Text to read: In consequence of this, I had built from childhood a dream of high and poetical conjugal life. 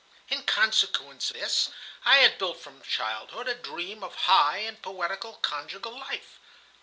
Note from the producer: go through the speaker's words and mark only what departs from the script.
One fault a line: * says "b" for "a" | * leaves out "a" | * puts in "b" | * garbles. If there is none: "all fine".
* leaves out "of"